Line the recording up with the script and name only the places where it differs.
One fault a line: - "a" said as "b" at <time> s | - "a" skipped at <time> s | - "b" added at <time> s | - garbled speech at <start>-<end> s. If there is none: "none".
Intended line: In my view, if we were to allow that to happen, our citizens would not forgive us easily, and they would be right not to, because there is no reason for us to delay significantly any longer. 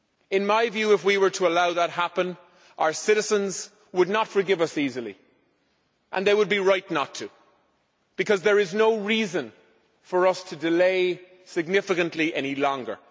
none